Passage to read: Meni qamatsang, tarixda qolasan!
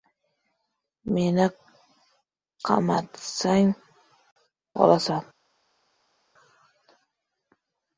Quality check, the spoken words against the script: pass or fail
fail